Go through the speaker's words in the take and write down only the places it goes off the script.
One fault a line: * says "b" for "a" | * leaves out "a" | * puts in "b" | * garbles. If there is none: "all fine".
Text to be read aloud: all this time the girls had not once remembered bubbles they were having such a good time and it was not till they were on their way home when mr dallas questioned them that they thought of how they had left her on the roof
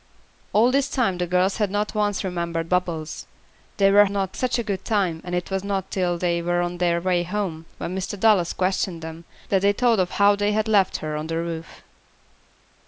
* says "not" for "having"